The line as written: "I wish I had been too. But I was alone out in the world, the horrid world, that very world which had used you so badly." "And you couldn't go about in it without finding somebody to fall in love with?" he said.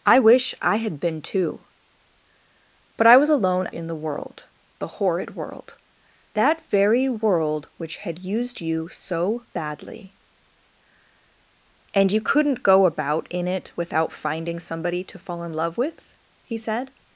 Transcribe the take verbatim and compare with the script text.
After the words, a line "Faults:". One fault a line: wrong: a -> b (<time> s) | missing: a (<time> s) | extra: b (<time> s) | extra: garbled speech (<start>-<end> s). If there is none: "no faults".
"I wish I had been too. But I was alone in the world, the horrid world, that very world which had used you so badly." "And you couldn't go about in it without finding somebody to fall in love with?" he said.
Faults:
missing: out (3.7 s)